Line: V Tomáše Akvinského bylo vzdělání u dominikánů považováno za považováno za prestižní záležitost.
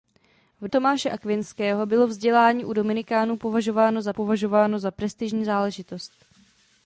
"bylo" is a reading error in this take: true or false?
false